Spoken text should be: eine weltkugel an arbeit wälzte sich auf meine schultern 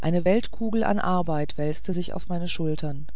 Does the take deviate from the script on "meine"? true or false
false